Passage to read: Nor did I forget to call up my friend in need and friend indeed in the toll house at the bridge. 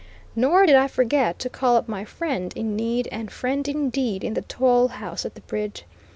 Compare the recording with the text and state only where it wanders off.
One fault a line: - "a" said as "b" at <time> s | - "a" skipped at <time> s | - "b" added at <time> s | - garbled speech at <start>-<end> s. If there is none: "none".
none